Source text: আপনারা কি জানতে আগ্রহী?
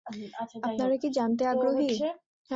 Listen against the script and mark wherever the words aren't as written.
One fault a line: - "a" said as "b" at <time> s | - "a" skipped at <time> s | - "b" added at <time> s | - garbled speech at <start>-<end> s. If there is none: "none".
none